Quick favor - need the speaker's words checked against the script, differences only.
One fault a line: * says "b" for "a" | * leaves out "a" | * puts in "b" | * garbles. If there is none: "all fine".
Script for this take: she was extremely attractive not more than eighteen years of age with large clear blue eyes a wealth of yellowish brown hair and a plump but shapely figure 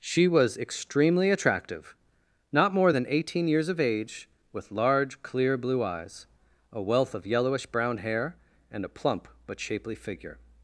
all fine